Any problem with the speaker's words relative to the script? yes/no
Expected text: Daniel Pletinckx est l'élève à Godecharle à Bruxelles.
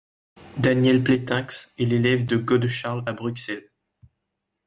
yes